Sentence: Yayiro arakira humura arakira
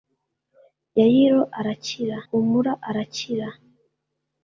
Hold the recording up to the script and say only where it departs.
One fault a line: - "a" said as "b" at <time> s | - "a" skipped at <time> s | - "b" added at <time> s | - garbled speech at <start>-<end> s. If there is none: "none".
none